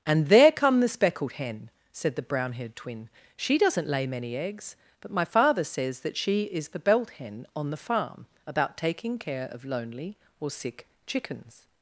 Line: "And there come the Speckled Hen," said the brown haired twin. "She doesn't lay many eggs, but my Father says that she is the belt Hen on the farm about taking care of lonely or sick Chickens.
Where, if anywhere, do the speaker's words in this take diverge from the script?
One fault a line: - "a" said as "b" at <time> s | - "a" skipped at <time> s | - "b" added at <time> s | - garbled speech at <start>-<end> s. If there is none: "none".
none